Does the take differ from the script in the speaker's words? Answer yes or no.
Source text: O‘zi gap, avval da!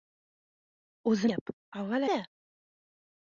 no